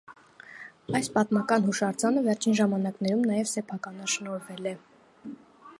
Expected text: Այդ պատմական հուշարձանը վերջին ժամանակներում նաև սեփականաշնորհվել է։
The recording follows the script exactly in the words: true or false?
false